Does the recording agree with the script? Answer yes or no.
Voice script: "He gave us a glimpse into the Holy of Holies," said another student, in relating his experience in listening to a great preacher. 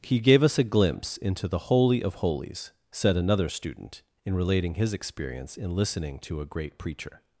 yes